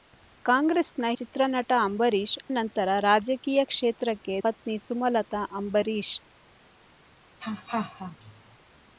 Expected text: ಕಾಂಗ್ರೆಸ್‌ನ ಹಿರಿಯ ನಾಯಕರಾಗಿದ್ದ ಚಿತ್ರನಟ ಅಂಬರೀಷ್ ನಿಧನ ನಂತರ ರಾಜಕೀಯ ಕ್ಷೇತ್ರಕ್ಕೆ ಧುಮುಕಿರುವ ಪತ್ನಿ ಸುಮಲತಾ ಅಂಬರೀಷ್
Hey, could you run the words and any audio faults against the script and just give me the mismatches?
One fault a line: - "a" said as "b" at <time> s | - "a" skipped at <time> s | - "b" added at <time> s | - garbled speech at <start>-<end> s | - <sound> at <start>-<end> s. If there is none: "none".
- "ಹಿರಿಯ ನಾಯಕರಾಗಿದ್ದ" skipped at 1.1 s
- "ನಿಧನ" skipped at 2.4 s
- "ಧುಮುಕಿರುವ" skipped at 4.4 s
- laugh at 7.4-8.6 s